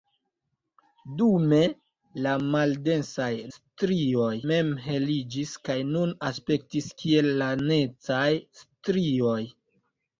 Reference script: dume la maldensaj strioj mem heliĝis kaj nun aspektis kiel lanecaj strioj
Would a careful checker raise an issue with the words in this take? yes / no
no